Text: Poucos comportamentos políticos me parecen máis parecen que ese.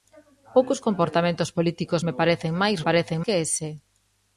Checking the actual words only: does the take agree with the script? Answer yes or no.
yes